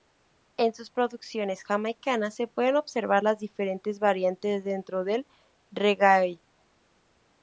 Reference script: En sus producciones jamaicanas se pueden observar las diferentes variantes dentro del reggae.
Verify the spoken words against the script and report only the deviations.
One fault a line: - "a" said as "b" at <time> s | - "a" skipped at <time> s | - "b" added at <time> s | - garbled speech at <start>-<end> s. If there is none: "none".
none